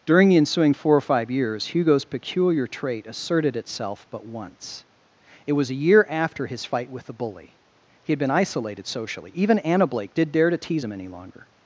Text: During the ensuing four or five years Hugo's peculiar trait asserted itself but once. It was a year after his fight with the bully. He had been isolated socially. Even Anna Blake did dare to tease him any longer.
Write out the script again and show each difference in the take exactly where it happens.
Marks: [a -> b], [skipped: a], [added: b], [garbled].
During the ensuing four or five years Hugo's peculiar trait asserted itself but once. It was a year after his fight with the bully. He had been isolated socially. Even Anna Blake did dare to tease him any longer.